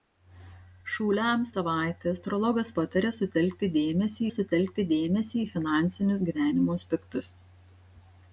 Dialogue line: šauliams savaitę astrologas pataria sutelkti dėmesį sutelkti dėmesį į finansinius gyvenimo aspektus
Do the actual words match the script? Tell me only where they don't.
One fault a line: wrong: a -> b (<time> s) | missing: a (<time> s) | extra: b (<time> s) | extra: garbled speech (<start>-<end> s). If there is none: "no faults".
no faults